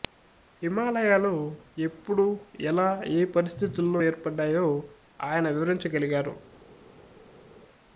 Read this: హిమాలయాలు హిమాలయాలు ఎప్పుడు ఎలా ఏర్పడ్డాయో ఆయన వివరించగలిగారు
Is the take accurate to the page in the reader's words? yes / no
no